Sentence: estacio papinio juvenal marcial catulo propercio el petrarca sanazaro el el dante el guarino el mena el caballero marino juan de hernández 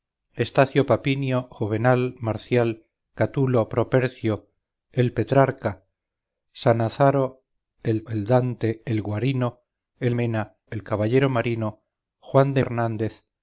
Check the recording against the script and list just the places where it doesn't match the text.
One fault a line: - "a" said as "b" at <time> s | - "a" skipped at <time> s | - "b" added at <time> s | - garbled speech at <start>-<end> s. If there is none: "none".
none